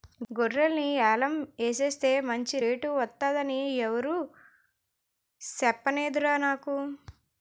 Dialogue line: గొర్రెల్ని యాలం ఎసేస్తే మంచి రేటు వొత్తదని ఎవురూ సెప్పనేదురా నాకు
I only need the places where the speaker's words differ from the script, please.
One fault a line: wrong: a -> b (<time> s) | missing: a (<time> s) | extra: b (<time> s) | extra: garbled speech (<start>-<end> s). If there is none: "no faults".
no faults